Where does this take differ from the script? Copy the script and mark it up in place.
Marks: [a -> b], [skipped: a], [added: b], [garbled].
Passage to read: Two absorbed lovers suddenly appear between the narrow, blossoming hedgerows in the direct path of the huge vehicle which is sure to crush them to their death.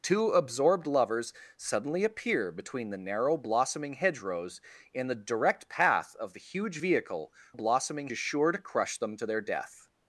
Two absorbed lovers suddenly appear between the narrow, blossoming hedgerows in the direct path of the huge vehicle [which -> blossoming] is sure to crush them to their death.